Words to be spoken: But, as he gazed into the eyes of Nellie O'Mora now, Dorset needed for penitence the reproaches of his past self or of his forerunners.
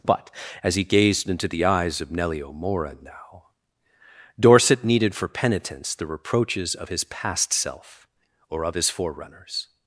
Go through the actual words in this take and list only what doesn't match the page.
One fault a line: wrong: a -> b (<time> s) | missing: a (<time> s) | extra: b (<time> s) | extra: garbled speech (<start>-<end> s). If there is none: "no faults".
no faults